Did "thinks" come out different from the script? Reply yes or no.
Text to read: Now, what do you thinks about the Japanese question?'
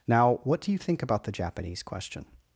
yes